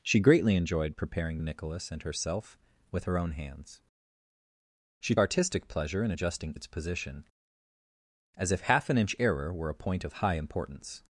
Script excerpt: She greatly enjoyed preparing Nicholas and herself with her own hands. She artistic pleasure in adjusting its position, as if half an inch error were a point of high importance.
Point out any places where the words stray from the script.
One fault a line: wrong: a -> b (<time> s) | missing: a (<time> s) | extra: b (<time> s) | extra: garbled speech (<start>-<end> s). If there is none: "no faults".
no faults